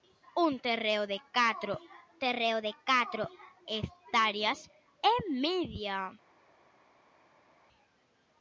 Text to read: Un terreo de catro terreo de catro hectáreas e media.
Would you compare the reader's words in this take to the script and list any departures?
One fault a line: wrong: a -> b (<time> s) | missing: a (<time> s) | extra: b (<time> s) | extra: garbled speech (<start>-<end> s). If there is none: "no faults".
no faults